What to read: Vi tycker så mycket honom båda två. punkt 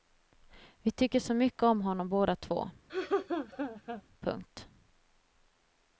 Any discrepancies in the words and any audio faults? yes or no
yes